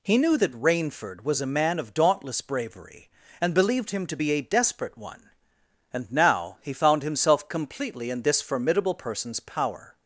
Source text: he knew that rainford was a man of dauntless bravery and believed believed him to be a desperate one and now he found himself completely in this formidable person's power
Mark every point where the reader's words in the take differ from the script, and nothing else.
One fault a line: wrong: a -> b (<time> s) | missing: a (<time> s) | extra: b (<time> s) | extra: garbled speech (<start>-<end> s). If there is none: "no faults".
missing: believed (3.9 s)